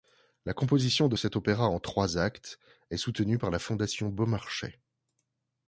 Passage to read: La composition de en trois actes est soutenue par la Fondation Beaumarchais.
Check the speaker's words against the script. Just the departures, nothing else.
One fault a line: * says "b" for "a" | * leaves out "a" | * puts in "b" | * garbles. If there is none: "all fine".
* puts in "cet opéra"